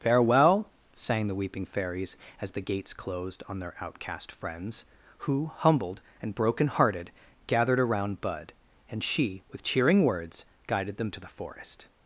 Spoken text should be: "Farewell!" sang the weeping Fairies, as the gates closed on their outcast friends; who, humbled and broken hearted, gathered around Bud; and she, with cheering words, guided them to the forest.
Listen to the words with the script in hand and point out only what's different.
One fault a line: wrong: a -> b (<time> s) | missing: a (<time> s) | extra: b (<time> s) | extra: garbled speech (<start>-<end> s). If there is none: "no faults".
no faults